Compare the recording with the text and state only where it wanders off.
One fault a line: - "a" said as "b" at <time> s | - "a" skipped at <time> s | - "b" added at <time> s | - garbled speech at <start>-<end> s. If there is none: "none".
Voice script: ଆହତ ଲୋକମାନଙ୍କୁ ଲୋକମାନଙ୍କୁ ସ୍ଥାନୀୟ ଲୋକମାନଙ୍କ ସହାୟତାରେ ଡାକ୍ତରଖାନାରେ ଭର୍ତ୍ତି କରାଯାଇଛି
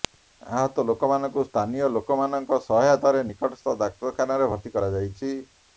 - "ଲୋକମାନଙ୍କୁ" skipped at 1.4 s
- "ନିକଟସ୍ଥ" added at 3.3 s